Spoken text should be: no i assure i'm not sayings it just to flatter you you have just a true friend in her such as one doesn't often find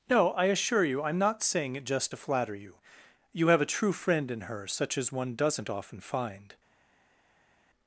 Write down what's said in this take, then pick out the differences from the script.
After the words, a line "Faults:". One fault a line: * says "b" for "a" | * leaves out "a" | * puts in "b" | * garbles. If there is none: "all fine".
no i assure you i'm not saying it just to flatter you you have a true friend in her such as one doesn't often find
Faults:
* puts in "you"
* says "saying" for "sayings"
* leaves out "just"